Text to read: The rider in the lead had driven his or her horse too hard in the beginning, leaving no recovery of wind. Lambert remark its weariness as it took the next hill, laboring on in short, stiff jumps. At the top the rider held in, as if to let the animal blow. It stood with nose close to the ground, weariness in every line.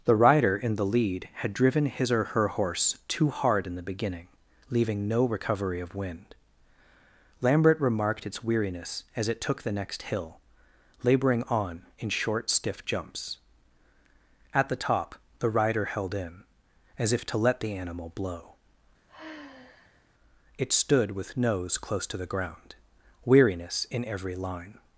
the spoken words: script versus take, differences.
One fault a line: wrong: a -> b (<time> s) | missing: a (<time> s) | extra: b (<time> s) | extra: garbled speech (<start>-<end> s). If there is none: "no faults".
wrong: remark -> remarked (7.8 s)